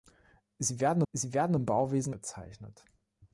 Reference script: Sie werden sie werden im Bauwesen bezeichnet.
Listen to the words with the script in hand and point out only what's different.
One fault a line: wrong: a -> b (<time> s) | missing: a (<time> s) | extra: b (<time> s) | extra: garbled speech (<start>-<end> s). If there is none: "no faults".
no faults